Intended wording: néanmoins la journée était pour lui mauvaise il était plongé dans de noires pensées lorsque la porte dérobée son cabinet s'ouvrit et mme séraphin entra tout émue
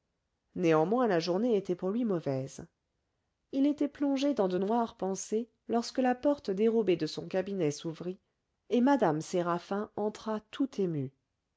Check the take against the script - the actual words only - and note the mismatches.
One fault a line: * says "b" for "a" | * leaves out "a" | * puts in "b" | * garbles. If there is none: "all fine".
* puts in "de"